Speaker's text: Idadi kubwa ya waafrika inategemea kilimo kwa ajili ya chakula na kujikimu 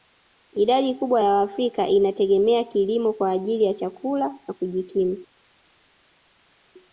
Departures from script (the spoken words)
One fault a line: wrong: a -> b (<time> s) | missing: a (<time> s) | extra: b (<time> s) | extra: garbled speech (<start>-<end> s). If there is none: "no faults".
no faults